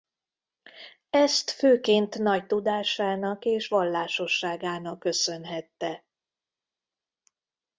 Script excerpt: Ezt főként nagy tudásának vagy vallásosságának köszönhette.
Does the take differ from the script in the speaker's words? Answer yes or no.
yes